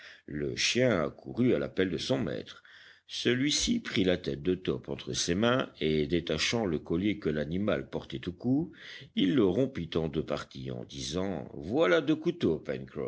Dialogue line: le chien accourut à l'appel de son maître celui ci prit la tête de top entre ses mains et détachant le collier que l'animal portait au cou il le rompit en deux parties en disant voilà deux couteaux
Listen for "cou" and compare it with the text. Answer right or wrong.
right